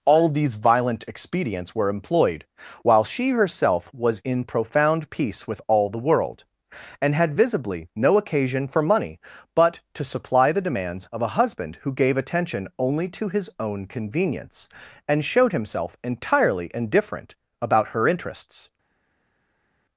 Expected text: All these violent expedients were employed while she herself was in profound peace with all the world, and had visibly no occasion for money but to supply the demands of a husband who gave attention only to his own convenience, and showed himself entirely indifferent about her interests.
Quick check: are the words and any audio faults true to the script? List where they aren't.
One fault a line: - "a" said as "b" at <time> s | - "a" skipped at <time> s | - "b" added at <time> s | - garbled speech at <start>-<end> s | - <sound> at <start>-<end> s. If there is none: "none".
none